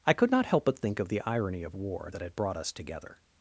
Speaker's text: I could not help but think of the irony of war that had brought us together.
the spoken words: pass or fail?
pass